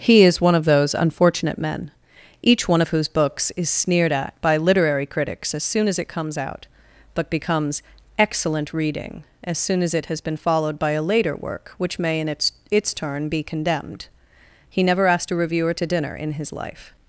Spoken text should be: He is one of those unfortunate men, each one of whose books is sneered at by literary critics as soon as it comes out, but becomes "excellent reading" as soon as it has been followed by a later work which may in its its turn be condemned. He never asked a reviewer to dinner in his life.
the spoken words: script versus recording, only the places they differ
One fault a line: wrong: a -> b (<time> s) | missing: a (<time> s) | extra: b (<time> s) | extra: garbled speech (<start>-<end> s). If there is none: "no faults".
no faults